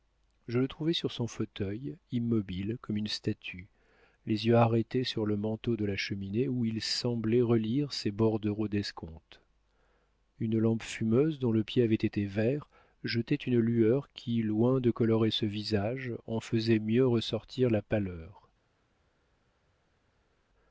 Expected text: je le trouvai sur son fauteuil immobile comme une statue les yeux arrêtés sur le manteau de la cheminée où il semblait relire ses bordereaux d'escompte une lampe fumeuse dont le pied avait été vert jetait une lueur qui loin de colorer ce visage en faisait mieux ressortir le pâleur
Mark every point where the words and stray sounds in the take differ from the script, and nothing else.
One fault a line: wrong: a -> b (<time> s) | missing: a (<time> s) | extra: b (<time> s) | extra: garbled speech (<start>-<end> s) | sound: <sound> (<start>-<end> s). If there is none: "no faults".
wrong: le -> la (17.7 s)